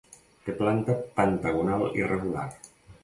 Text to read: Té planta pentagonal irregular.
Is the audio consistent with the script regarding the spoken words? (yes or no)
yes